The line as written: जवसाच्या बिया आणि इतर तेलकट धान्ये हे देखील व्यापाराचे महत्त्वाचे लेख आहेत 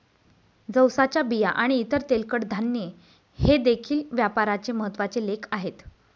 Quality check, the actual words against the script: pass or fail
pass